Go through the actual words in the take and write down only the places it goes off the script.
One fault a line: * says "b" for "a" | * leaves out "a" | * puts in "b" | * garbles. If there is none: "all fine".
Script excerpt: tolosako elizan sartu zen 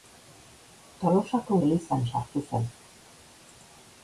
all fine